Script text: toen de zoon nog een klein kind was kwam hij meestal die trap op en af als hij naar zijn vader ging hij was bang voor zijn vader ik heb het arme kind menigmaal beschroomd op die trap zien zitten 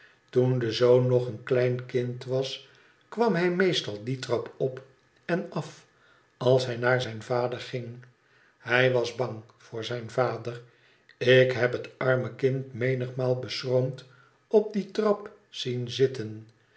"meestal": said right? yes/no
yes